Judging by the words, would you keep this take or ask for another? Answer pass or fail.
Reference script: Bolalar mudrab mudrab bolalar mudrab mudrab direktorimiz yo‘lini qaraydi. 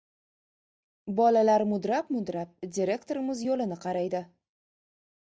fail